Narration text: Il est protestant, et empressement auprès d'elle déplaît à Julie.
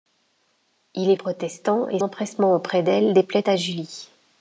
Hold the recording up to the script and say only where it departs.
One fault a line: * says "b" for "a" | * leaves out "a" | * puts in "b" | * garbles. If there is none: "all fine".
all fine